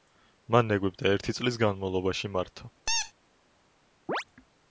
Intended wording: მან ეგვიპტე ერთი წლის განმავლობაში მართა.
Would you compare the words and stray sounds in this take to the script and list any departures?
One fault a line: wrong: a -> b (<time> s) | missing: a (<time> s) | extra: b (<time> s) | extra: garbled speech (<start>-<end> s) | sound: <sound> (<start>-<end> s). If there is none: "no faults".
sound: squeak (2.9-3.1 s)
sound: chirp (4.1-4.2 s)